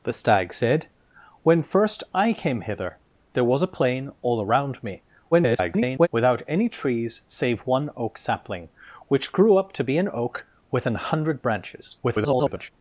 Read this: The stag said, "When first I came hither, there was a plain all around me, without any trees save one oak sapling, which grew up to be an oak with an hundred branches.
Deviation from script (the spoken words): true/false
true